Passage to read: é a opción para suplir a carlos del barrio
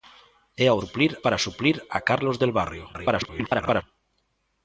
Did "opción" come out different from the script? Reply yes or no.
yes